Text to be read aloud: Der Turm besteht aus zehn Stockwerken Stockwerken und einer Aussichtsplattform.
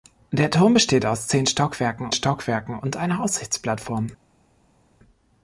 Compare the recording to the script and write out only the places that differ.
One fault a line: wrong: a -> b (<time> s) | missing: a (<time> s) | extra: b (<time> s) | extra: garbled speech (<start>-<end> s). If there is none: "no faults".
no faults